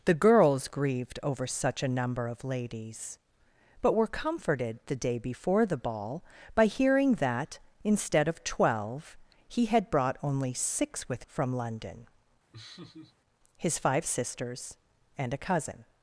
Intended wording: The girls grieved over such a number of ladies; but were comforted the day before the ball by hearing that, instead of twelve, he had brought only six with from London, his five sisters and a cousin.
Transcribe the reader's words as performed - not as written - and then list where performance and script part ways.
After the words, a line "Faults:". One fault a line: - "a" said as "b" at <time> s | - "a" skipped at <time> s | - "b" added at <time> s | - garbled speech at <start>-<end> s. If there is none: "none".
The girls grieved over such a number of ladies; but were comforted the day before the ball by hearing that, instead of twelve, he had brought only six with from London, his five sisters and a cousin.
Faults:
none